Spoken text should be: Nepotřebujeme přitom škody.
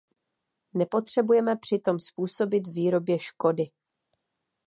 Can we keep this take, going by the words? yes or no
no